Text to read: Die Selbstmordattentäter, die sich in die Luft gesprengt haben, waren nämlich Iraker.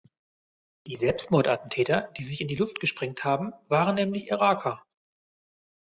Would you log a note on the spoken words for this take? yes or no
no